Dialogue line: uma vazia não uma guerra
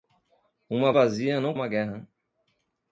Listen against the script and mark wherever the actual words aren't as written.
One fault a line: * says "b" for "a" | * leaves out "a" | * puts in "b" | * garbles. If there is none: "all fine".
all fine